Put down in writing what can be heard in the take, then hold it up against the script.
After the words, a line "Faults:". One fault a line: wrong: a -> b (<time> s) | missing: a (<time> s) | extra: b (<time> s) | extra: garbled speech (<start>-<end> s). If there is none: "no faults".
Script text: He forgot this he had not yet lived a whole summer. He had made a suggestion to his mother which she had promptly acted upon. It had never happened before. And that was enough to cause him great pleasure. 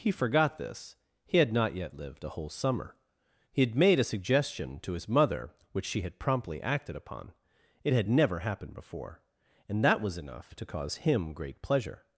He forgot this he had not yet lived a whole summer. He had made a suggestion to his mother which she had promptly acted upon. It had never happened before. And that was enough to cause him great pleasure.
Faults:
no faults